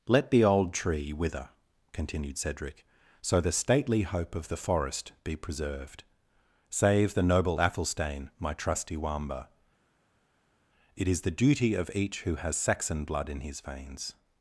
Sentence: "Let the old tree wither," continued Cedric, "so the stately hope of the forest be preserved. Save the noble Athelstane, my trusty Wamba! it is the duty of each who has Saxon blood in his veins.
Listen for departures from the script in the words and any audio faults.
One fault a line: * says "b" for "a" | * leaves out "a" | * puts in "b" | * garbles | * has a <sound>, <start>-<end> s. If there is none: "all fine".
all fine